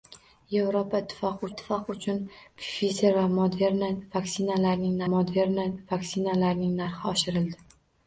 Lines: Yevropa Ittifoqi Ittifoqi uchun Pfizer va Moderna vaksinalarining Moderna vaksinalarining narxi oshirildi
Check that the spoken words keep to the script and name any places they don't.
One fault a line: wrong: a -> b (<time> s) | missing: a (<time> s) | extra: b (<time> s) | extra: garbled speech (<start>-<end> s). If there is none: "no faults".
no faults